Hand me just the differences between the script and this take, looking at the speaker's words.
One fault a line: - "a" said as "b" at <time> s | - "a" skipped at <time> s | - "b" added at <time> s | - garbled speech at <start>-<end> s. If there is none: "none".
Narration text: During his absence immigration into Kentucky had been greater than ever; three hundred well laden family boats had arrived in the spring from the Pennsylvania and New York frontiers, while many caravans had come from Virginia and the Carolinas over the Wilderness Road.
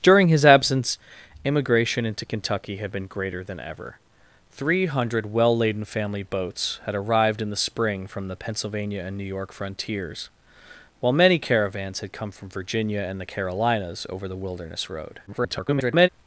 - garbled speech at 15.3-16.1 s